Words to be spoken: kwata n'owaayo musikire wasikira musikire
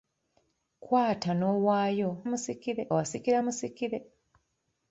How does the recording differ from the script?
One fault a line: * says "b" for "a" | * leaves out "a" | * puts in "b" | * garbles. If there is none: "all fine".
all fine